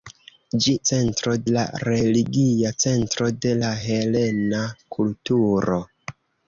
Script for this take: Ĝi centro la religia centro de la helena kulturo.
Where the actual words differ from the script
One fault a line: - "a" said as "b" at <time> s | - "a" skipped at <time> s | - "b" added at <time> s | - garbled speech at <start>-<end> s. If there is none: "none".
none